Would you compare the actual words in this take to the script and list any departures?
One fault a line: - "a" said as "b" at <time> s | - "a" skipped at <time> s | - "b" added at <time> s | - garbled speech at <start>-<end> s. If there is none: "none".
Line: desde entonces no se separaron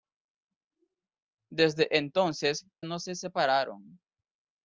none